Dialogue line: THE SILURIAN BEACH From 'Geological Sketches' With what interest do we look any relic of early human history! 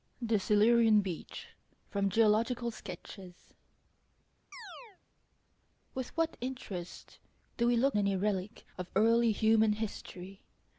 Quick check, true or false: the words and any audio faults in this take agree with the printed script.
false